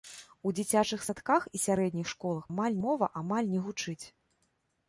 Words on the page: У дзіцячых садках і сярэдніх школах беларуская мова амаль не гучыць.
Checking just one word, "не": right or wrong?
right